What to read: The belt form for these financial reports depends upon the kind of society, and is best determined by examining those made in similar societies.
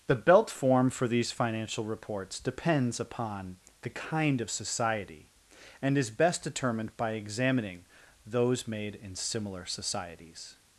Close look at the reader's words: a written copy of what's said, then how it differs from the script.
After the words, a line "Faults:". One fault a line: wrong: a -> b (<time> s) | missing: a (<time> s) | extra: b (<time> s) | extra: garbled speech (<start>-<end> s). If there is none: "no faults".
The belt form for these financial reports depends upon the kind of society, and is best determined by examining those made in similar societies.
Faults:
no faults